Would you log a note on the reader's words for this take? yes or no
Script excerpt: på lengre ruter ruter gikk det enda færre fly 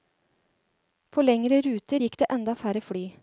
yes